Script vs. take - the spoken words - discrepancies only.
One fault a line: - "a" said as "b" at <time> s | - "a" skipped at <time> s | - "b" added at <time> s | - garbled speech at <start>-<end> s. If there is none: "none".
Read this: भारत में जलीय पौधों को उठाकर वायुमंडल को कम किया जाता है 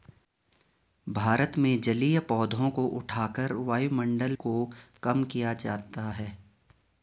none